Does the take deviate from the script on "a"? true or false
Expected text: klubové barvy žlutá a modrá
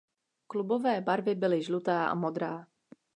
false